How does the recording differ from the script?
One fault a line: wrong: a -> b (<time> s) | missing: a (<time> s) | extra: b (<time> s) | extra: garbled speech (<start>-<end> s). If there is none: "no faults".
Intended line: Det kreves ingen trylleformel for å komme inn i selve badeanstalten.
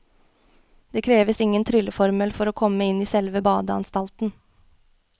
no faults